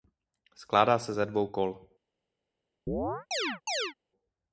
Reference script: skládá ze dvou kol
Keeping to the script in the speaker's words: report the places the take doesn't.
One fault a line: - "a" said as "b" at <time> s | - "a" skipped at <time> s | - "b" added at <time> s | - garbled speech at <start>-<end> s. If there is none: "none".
- "se" added at 1.0 s